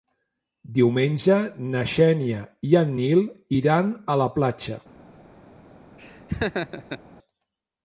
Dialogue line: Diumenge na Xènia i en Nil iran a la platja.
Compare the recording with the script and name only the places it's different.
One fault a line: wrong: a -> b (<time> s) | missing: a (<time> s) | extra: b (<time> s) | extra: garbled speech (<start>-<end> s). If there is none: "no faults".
no faults